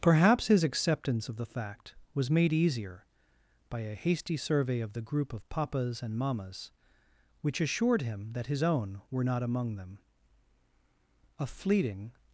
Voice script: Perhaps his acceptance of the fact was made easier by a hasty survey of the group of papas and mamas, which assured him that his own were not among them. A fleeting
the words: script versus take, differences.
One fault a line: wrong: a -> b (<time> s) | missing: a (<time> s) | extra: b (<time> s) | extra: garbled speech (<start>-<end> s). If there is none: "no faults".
no faults